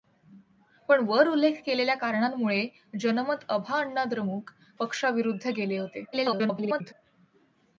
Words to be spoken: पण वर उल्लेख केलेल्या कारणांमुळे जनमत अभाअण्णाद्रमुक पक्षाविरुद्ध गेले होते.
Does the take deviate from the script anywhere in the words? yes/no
yes